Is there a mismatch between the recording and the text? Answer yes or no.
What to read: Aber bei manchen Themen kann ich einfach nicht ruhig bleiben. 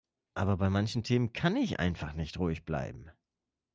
no